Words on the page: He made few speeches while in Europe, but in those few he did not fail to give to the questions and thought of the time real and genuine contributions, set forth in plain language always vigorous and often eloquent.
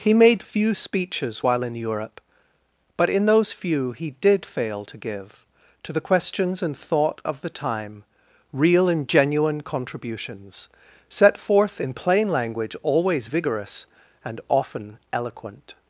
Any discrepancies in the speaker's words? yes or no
yes